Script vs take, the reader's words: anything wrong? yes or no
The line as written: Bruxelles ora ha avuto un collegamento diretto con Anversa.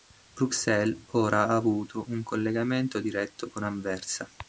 no